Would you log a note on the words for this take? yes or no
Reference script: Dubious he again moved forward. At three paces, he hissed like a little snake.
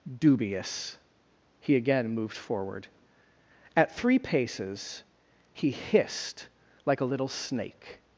no